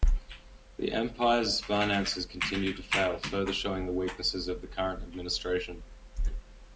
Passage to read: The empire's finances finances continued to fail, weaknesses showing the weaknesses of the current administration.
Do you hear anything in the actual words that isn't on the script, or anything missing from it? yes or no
yes